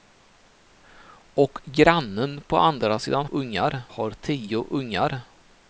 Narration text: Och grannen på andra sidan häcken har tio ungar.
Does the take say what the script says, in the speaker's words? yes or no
no